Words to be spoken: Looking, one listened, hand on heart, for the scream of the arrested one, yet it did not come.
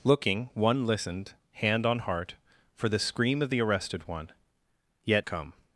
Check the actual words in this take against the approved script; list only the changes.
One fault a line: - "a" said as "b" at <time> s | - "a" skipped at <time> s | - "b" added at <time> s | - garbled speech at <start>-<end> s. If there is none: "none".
- "it did not" skipped at 5.2 s